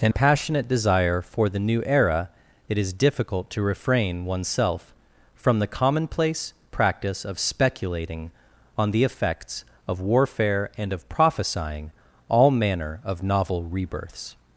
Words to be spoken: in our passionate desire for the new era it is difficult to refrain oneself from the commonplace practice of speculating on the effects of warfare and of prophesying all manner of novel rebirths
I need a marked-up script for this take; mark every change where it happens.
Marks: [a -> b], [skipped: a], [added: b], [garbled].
in [skipped: our] passionate desire for the new era it is difficult to refrain oneself from the commonplace practice of speculating on the effects of warfare and of prophesying all manner of novel rebirths